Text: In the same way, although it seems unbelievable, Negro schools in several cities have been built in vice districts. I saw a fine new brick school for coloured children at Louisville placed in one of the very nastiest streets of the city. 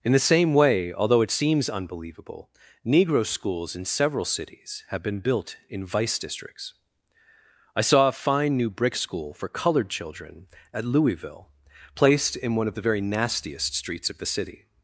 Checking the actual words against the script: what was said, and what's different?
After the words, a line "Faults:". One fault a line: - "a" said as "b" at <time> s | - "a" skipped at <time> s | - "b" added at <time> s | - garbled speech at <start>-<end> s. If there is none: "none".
In the same way, although it seems unbelievable, Negro schools in several cities have been built in vice districts. I saw a fine new brick school for coloured children at Louisville placed in one of the very nastiest streets of the city.
Faults:
none